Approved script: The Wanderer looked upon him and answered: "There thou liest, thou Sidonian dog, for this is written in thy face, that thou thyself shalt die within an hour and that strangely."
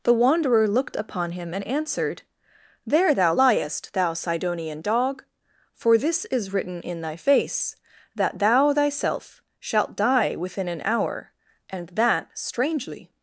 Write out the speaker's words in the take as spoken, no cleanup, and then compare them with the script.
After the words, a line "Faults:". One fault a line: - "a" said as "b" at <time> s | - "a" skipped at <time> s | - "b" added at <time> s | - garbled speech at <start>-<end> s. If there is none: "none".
The Wanderer looked upon him and answered: "There thou liest, thou Sidonian dog, for this is written in thy face, that thou thyself shalt die within an hour and that strangely."
Faults:
none